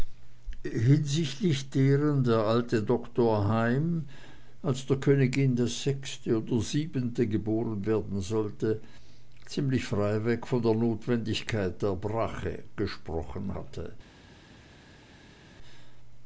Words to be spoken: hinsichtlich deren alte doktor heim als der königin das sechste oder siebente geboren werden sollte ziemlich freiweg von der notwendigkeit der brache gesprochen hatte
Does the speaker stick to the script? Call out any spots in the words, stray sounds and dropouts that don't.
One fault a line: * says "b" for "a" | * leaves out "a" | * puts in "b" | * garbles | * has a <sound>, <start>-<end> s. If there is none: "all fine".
* puts in "der"